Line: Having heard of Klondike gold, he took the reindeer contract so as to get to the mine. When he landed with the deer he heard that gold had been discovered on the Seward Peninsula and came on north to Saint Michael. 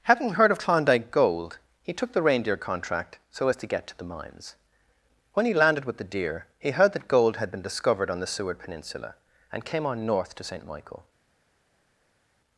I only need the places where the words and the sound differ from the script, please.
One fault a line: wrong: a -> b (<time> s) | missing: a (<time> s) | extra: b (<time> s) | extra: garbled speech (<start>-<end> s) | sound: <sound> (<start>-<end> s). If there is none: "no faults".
wrong: mine -> mines (4.0 s)